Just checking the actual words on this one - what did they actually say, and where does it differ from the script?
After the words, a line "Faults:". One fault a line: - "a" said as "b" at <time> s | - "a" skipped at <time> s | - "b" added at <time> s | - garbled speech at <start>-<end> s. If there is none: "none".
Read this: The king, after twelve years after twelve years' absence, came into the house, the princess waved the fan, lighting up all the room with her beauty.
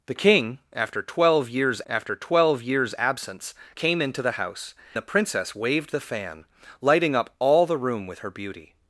The king, after twelve years after twelve years' absence, came into the house, the princess waved the fan, lighting up all the room with her beauty.
Faults:
none